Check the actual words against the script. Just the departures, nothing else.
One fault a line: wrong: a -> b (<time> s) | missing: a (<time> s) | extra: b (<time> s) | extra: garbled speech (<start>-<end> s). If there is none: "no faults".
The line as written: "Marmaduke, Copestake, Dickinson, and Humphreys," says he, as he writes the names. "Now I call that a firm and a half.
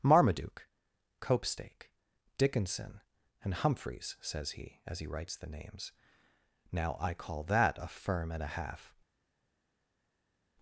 no faults